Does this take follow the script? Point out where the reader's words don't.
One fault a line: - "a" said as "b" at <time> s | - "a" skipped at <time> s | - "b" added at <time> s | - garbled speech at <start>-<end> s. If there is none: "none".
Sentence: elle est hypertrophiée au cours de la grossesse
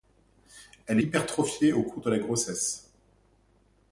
- "est" skipped at 1.0 s